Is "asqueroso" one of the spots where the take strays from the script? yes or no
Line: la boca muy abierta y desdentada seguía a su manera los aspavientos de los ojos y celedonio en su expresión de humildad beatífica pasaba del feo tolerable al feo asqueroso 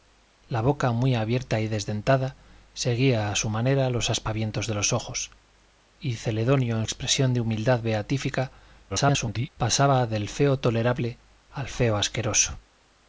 no